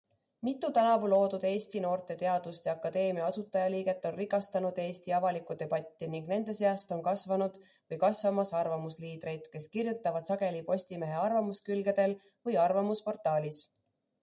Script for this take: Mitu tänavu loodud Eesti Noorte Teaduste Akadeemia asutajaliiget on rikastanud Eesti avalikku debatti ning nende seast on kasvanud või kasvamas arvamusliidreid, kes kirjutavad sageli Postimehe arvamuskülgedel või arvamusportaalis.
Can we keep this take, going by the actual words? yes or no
yes